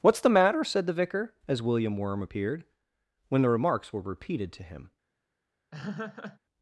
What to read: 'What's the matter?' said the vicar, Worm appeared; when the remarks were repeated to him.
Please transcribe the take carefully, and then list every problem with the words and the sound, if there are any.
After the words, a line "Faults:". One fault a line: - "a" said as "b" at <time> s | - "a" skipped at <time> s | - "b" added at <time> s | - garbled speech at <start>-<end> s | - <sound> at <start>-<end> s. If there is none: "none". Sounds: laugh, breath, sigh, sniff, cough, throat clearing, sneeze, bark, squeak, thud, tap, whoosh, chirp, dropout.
'What's the matter?' said the vicar, as William Worm appeared; when the remarks were repeated to him.
Faults:
- "as William" added at 1.5 s
- laugh at 5.7-6.4 s